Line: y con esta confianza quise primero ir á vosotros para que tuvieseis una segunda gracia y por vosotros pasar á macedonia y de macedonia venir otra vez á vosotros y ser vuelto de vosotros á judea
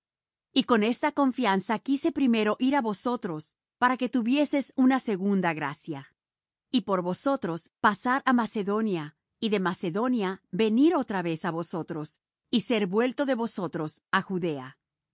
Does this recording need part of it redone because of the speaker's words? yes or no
no